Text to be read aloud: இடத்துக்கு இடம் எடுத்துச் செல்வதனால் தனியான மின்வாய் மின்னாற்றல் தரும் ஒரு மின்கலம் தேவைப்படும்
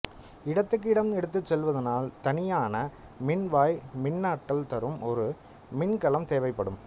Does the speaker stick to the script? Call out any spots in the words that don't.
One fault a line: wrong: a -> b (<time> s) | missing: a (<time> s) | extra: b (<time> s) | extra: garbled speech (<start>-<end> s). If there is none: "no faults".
no faults